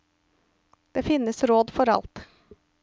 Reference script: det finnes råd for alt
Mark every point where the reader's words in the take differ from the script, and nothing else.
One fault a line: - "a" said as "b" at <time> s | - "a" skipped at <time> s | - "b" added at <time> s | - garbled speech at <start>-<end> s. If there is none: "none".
none